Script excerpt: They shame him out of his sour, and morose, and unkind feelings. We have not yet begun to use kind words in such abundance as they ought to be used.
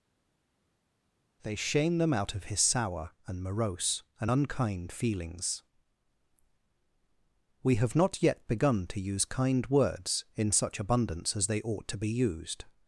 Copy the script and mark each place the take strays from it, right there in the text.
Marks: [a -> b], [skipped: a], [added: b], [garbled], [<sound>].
They shame [him -> them] out of his sour, and morose, and unkind feelings. We have not yet begun to use kind words in such abundance as they ought to be used.